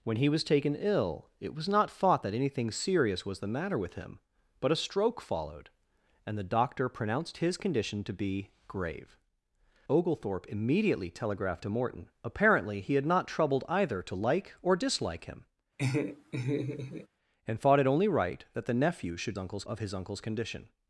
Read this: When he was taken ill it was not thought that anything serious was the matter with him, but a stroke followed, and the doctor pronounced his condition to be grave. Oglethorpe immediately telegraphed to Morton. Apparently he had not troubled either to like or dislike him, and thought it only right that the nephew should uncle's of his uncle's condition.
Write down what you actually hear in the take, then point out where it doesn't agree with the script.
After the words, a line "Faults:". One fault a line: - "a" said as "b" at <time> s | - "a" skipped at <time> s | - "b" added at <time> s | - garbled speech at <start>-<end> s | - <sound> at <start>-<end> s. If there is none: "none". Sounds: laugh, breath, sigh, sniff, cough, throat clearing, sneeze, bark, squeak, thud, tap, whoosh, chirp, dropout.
When he was taken ill it was not thought that anything serious was the matter with him, but a stroke followed, and the doctor pronounced his condition to be grave. Oglethorpe immediately telegraphed to Morton. Apparently he had not troubled either to like or dislike him, and thought it only right that the nephew should uncle's of his uncle's condition.
Faults:
- laugh at 15.8-17.1 s